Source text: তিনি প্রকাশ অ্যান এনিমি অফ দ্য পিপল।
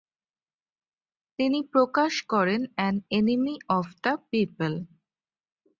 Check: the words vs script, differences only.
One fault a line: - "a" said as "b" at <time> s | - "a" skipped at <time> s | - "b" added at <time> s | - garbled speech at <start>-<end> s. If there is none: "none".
- "করেন" added at 2.3 s